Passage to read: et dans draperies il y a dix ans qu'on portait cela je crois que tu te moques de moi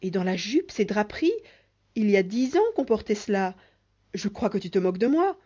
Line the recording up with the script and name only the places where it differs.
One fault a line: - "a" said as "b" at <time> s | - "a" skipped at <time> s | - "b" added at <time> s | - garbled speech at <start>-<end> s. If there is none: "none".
- "la jupe ces" added at 0.2 s